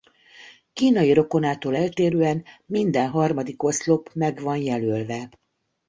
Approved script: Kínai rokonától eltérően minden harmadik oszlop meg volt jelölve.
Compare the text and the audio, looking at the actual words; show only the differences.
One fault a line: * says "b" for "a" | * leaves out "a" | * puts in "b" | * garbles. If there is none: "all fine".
* says "van" for "volt"